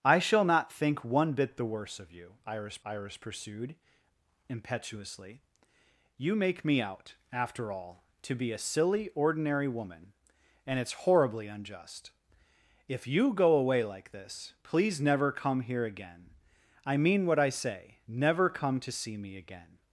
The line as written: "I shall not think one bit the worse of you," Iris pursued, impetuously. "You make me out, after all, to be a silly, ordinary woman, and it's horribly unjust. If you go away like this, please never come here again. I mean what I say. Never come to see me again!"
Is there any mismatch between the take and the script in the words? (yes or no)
yes